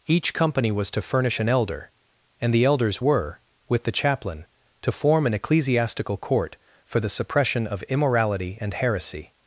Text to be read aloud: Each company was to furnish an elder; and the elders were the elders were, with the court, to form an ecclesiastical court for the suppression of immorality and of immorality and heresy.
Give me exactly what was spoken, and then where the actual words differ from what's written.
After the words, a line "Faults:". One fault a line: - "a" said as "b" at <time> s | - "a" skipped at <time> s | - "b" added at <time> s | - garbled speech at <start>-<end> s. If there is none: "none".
Each company was to furnish an elder; and the elders were, with the chaplain, to form an ecclesiastical court for the suppression of immorality and heresy.
Faults:
- "the elders were" skipped at 3.4 s
- "court" said as "chaplain" at 3.9 s
- "of immorality and" skipped at 8.8 s